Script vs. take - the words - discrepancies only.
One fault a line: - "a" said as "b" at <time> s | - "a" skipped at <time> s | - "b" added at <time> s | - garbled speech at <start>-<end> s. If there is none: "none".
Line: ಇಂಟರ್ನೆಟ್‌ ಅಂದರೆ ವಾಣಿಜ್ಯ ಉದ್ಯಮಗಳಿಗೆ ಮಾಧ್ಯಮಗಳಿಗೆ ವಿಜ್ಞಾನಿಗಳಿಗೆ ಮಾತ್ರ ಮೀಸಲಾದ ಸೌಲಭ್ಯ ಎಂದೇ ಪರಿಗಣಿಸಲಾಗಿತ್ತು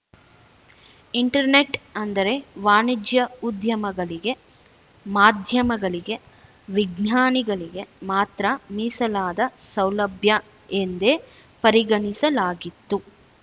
none